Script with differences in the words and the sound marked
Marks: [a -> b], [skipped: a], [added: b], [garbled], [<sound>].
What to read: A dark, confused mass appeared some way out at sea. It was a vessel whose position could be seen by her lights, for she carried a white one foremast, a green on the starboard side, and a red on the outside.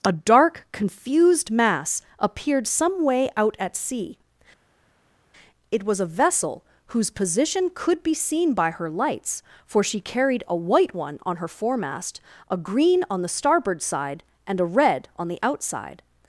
A dark, confused mass appeared some way out at sea. It was a vessel whose position could be seen by her lights, for she carried a white one [added: on her] foremast, a green on the starboard side, and a red on the outside.